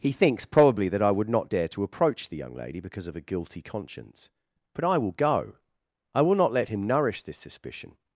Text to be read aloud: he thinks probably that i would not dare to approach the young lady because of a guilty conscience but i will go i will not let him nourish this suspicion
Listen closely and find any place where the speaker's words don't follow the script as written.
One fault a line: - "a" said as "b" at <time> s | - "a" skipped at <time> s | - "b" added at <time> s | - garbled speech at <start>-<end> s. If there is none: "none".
none